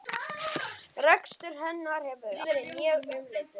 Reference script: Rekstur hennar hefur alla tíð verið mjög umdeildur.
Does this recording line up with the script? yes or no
no